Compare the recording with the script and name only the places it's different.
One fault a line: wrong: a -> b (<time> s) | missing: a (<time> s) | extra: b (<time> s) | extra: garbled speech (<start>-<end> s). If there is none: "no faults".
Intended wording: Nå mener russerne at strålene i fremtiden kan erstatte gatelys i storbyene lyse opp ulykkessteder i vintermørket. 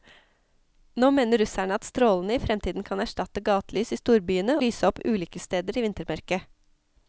no faults